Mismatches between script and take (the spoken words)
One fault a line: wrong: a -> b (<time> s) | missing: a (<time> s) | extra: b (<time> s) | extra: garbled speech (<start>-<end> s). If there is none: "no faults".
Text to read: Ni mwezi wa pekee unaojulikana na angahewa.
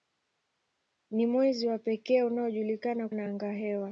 no faults